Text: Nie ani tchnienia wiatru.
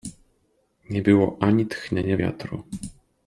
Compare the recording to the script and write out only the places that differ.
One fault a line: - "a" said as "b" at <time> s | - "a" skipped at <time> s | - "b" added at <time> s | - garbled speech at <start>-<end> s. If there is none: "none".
- "było" added at 1.0 s